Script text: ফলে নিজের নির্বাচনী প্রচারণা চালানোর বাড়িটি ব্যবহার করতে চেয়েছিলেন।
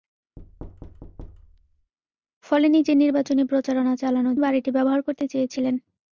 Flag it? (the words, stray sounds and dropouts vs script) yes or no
yes